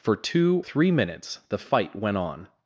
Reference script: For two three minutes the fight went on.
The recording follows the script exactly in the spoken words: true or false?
true